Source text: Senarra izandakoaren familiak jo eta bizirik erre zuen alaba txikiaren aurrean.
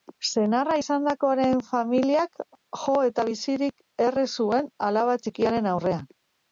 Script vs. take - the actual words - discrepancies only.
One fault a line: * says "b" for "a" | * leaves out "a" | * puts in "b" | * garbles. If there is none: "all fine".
all fine